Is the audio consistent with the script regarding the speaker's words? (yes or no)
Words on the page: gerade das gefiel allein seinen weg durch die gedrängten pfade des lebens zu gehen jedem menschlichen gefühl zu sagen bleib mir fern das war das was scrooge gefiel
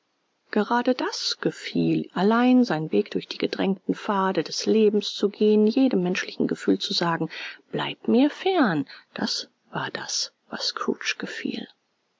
yes